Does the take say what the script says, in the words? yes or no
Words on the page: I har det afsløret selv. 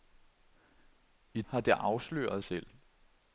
yes